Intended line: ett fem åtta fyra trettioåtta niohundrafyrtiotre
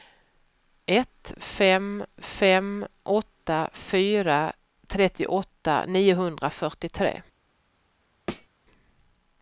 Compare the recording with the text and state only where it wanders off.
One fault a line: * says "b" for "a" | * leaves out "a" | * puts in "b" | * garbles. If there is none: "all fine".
* puts in "fem"